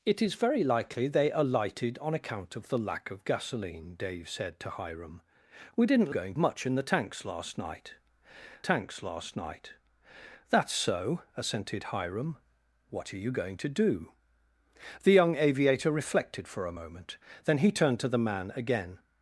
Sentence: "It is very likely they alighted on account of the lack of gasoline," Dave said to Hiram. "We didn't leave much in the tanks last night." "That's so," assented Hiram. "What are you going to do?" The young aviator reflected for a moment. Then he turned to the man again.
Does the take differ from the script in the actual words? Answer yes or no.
yes